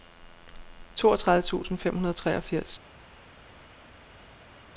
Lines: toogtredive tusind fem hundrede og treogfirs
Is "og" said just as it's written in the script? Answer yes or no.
yes